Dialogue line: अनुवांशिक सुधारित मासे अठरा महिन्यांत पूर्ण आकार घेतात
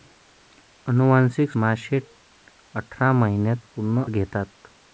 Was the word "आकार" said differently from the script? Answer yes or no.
yes